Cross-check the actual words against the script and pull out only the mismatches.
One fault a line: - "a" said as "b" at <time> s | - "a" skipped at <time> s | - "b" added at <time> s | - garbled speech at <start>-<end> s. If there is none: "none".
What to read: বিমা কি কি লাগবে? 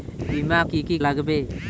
none